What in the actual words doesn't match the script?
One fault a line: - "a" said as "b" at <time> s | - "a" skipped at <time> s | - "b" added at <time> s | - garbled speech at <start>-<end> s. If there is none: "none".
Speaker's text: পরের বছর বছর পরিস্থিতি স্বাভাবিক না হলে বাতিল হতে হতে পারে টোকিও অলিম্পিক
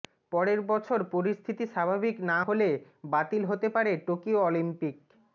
- "বছর" skipped at 1.0 s
- "হতে" skipped at 3.7 s